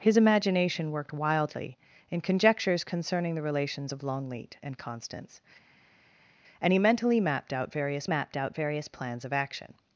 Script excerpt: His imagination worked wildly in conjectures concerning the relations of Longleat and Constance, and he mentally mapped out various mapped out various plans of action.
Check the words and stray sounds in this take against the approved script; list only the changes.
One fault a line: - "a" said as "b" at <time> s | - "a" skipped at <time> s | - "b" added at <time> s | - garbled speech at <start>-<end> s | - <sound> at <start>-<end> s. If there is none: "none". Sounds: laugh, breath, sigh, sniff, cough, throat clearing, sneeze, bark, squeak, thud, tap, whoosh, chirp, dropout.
none